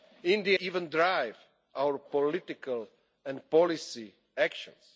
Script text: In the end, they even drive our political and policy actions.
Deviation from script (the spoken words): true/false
true